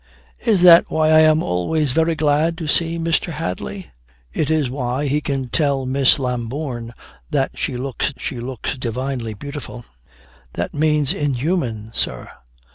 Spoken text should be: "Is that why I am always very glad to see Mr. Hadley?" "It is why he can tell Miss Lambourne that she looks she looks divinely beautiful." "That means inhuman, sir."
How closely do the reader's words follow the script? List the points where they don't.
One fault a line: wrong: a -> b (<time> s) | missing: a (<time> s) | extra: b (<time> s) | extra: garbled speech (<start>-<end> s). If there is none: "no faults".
no faults